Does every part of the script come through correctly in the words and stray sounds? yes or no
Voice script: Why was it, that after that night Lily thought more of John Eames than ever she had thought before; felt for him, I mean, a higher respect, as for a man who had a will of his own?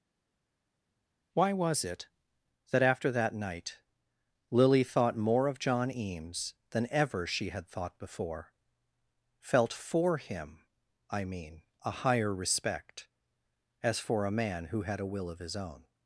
yes